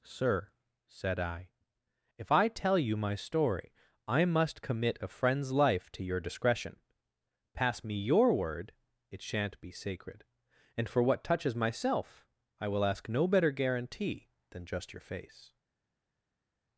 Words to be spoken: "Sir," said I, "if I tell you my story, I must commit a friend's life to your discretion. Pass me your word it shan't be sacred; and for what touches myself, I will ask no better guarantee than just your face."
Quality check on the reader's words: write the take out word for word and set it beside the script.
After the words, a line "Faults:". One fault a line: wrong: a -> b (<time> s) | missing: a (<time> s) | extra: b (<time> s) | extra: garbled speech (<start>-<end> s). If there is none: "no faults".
"Sir," said I, "if I tell you my story, I must commit a friend's life to your discretion. Pass me your word it shan't be sacred; and for what touches myself, I will ask no better guarantee than just your face."
Faults:
no faults